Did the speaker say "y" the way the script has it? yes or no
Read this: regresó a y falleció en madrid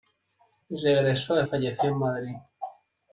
yes